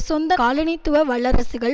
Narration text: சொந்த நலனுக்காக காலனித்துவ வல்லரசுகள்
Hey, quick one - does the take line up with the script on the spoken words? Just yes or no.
no